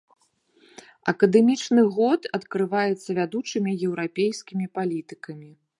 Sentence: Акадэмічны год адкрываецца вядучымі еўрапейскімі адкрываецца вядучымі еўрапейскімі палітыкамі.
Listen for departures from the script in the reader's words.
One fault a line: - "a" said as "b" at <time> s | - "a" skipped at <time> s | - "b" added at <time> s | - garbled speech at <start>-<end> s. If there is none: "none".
- "адкрываецца вядучымі еўрапейскімі" skipped at 4.6 s